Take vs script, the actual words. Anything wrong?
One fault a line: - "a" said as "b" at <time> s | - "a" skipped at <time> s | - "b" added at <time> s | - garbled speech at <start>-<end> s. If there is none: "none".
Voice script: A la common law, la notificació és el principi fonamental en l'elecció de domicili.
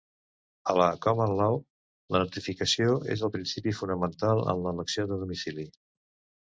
none